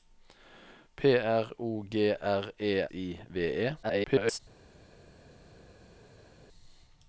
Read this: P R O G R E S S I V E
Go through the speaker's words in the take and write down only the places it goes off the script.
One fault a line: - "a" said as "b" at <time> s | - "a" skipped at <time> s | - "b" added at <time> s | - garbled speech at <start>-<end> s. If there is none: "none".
- "S S" skipped at 2.9 s
- garbled speech at 3.8-4.4 s